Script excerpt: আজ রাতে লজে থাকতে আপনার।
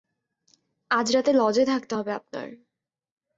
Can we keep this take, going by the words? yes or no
no